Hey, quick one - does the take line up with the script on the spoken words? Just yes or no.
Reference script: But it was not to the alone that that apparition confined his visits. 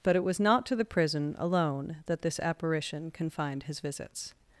no